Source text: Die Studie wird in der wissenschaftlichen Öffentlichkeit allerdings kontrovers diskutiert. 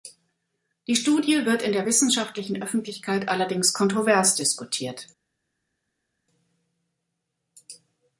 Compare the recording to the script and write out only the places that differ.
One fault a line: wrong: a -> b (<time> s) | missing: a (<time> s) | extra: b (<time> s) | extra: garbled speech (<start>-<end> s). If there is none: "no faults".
no faults